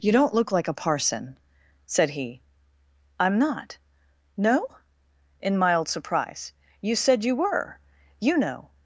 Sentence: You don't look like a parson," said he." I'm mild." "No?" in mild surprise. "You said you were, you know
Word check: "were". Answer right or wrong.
right